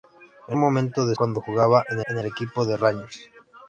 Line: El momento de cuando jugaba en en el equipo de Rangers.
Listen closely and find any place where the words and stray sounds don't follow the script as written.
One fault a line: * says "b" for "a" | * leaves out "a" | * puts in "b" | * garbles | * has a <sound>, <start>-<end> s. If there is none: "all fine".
all fine